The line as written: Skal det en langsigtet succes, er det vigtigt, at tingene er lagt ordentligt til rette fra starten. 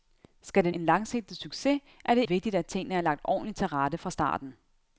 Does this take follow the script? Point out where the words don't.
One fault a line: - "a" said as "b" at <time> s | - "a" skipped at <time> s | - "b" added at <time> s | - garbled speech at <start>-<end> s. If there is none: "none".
none